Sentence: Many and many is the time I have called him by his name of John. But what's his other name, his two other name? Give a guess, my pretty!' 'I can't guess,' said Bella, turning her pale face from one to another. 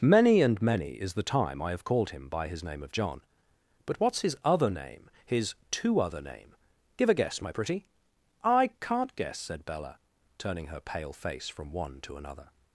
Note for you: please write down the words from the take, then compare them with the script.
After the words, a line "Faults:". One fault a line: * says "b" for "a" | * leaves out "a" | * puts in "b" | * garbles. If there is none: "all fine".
Many and many is the time I have called him by his name of John. But what's his other name, his two other name? Give a guess, my pretty!' 'I can't guess,' said Bella, turning her pale face from one to another.
Faults:
all fine